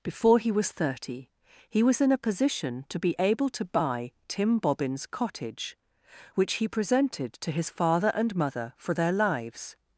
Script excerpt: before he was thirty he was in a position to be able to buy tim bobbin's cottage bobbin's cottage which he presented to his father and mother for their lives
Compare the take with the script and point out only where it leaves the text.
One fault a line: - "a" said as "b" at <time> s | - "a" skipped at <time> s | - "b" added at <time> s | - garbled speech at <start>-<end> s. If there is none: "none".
- "bobbin's cottage" skipped at 5.8 s